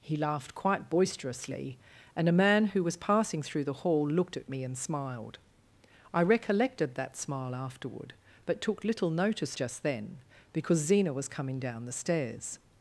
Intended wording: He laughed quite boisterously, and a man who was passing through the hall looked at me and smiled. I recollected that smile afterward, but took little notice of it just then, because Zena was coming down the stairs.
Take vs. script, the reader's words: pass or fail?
fail